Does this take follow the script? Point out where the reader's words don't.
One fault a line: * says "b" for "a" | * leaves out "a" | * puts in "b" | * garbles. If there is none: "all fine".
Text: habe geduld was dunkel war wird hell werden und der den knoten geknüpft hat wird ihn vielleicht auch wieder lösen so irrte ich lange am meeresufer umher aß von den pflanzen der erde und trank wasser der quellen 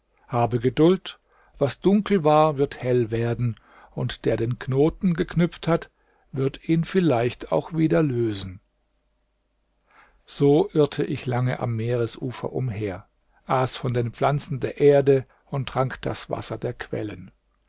* puts in "das"